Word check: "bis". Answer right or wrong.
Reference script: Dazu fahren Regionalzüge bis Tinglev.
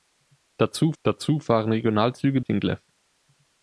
wrong